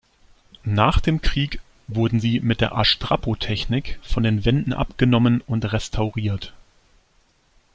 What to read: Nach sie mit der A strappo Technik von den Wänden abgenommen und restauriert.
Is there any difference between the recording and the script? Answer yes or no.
yes